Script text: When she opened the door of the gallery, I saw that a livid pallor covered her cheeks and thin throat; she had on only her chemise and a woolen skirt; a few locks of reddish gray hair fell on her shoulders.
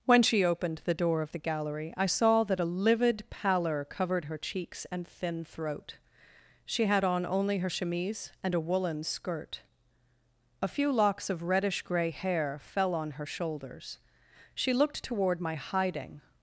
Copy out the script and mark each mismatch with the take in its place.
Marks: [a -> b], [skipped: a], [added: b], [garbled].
When she opened the door of the gallery, I saw that a livid pallor covered her cheeks and thin throat; she had on only her chemise and a woolen skirt; a few locks of reddish gray hair fell on her shoulders. [added: She looked toward my hiding]